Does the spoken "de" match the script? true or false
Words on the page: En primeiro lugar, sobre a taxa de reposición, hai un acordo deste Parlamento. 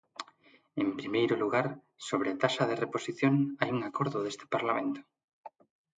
true